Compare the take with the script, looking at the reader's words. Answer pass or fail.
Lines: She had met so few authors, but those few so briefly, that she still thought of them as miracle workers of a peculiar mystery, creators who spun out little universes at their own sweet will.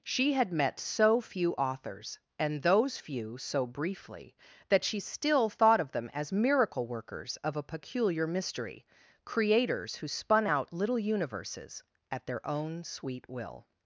fail